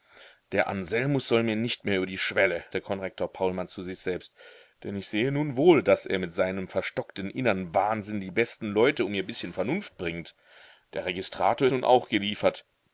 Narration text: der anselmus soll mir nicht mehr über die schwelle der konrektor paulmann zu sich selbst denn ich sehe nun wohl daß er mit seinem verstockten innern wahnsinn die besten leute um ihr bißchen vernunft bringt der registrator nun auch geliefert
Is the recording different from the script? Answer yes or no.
no